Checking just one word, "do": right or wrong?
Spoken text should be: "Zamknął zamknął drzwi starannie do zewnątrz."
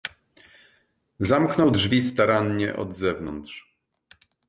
wrong